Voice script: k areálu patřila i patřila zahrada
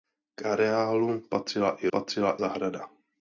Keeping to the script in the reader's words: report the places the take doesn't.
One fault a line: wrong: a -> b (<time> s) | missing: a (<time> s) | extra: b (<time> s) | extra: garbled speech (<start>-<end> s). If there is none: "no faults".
no faults